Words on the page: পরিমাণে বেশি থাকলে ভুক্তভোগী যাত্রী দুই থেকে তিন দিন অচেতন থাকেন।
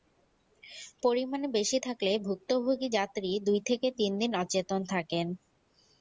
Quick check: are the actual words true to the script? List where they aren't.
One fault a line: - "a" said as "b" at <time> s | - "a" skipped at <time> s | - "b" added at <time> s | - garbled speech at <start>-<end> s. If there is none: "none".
none